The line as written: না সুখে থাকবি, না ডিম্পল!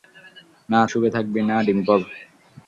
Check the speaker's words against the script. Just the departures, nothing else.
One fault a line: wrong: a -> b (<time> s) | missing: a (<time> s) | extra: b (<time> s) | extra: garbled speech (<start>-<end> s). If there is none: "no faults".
no faults